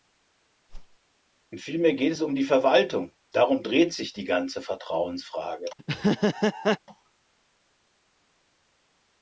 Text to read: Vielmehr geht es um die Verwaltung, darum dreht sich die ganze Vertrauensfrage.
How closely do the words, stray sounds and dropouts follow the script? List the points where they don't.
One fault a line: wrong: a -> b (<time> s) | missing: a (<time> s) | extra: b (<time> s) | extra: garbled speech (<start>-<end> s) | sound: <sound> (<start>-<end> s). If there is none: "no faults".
sound: whoosh (0.7-1.0 s)
sound: laugh (5.8-6.8 s)